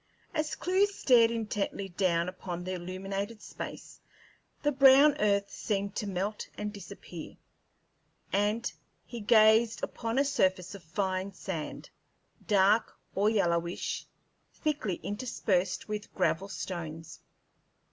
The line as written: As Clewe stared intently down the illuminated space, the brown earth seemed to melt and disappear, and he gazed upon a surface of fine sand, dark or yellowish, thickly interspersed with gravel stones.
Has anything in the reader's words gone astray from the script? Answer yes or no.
yes